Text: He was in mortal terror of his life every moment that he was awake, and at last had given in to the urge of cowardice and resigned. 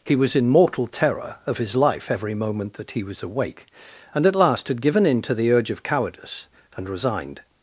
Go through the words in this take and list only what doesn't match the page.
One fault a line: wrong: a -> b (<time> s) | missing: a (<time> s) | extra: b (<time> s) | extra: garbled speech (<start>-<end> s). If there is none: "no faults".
no faults